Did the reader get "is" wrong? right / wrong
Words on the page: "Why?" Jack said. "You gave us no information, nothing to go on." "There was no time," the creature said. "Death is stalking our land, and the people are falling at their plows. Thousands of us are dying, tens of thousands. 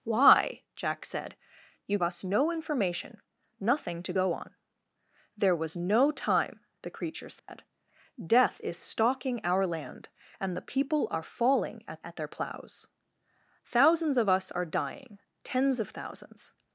right